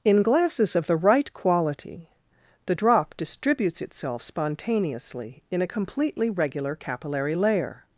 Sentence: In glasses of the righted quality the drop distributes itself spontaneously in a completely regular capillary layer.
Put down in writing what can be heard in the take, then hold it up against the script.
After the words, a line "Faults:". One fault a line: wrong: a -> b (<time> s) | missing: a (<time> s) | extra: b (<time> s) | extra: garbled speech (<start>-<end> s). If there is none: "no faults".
In glasses of the right quality the drop distributes itself spontaneously in a completely regular capillary layer.
Faults:
wrong: righted -> right (0.9 s)